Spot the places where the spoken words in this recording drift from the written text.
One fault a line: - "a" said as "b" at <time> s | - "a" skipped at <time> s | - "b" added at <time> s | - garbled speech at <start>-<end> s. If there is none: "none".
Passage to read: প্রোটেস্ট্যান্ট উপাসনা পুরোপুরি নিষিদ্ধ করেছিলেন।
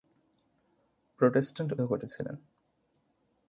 - "উপাসনা পুরোপুরি নিষিদ্ধ" skipped at 1.7 s